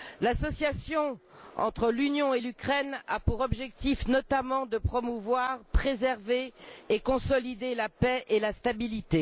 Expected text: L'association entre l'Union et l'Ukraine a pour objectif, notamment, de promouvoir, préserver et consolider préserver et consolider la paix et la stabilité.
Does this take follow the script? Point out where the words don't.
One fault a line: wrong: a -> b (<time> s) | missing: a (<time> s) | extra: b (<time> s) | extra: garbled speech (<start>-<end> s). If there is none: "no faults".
missing: préserver et consolider (7.7 s)